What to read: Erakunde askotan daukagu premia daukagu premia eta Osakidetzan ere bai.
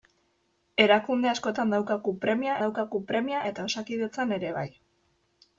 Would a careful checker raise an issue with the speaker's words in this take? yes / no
no